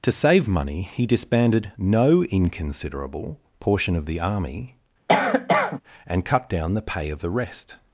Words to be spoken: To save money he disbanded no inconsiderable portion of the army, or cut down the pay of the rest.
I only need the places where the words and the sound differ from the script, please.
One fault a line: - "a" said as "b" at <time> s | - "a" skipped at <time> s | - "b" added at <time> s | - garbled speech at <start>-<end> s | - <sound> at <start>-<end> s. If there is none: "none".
- cough at 5.1-5.8 s
- "or" said as "and" at 6.1 s